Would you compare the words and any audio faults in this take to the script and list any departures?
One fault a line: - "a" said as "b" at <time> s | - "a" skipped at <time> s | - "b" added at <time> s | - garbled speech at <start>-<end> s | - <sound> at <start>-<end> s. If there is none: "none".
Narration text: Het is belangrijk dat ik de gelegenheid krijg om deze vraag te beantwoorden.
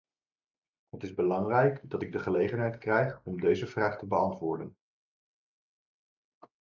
none